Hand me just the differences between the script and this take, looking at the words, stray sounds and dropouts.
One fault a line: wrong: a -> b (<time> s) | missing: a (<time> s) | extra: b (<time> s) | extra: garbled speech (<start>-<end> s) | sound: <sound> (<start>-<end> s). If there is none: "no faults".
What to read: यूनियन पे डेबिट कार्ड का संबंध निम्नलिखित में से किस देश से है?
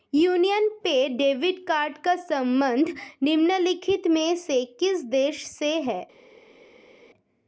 no faults